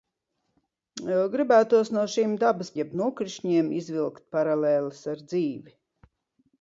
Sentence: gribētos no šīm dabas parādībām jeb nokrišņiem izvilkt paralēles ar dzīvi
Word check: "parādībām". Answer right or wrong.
wrong